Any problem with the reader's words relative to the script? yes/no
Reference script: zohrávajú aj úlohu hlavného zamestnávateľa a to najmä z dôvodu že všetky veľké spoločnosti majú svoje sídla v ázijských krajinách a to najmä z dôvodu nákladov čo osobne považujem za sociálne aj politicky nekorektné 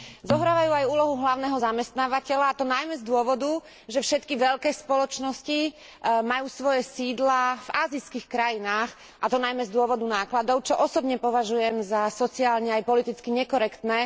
no